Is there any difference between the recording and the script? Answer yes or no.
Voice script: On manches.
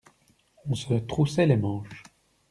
yes